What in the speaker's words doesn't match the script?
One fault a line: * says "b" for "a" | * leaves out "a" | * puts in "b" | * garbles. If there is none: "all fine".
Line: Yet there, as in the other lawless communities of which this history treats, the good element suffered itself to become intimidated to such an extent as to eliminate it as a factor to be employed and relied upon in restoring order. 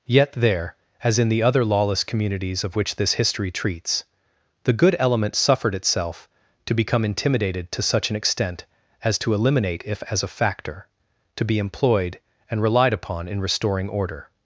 * says "if" for "it"